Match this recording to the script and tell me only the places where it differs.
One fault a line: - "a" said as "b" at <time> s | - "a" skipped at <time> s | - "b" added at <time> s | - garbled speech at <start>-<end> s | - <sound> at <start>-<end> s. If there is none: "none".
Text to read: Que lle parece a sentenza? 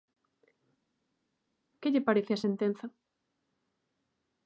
none